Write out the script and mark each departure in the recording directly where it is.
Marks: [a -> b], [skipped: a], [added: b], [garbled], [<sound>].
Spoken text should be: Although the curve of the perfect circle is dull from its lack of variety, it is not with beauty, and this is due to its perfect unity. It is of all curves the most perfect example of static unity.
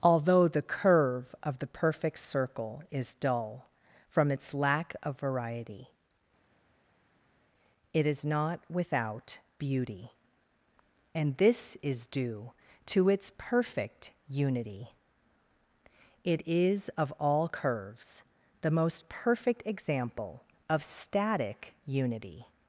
Although the curve of the perfect circle is dull from its lack of variety, it is not [with -> without] beauty, and this is due to its perfect unity. It is of all curves the most perfect example of static unity.